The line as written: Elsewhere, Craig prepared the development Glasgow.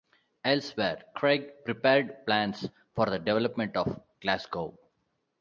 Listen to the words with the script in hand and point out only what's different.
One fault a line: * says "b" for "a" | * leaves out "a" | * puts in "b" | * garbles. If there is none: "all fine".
* puts in "plans for"
* puts in "of"